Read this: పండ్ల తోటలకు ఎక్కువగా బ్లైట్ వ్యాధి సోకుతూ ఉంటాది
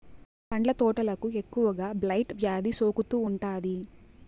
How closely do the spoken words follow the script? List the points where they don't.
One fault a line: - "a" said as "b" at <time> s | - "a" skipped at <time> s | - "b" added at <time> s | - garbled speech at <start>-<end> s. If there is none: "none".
none